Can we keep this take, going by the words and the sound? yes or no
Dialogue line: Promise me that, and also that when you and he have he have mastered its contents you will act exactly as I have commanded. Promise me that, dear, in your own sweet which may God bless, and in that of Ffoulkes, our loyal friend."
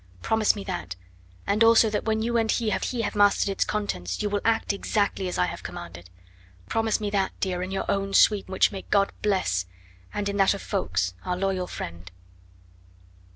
yes